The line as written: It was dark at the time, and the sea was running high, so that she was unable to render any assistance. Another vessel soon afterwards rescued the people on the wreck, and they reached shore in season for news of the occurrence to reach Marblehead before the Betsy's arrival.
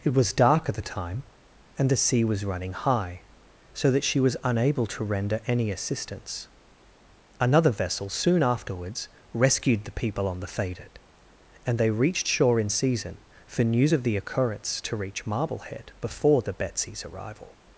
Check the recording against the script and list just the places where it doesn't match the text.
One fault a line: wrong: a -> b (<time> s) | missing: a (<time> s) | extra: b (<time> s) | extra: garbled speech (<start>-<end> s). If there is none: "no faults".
wrong: wreck -> faded (10.5 s)